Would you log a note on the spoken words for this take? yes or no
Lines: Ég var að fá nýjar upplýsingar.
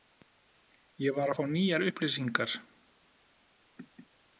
no